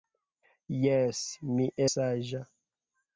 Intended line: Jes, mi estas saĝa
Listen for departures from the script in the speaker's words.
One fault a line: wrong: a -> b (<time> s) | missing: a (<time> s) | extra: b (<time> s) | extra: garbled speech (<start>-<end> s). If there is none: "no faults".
missing: estas (1.7 s)